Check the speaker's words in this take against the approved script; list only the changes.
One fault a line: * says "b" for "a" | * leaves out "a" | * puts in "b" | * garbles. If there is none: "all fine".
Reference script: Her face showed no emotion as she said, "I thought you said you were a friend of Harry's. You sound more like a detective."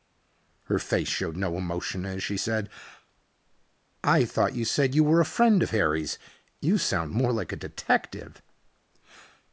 all fine